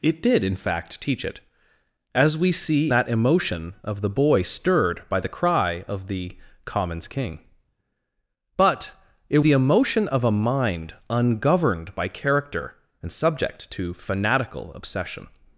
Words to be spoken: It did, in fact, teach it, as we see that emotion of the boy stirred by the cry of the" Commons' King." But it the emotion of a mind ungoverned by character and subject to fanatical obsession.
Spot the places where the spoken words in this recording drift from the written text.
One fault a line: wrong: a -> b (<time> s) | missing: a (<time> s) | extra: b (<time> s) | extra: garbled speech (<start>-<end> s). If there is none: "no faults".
no faults